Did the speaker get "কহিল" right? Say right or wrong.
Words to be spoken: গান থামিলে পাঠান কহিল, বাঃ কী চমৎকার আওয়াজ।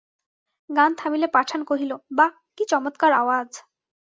right